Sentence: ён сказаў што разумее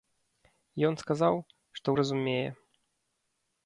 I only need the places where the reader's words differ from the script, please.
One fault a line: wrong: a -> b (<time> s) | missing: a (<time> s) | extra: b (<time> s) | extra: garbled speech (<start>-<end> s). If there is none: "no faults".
no faults